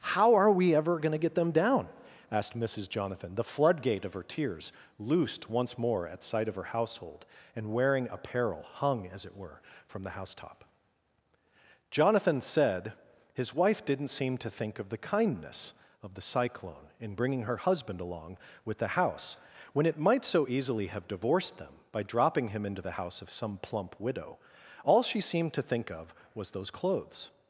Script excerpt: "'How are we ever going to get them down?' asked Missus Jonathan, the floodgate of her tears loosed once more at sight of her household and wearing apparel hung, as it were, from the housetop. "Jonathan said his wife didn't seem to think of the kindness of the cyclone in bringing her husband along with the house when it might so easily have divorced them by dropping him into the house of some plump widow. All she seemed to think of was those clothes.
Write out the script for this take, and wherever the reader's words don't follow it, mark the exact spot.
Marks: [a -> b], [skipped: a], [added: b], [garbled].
"'How are we ever going to get them down?' asked Missus Jonathan, the floodgate of her tears loosed once more at sight of her household and wearing apparel hung, as it were, from the housetop. "Jonathan said his wife didn't seem to think of the kindness of the cyclone in bringing her husband along with the house when it might so easily have divorced them by dropping him into the house of some plump widow. All she seemed to think of was those clothes.